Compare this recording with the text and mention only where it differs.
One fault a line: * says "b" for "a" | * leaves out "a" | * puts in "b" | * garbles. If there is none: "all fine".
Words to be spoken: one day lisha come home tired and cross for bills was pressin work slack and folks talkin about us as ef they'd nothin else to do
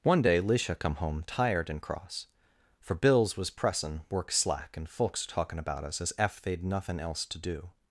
all fine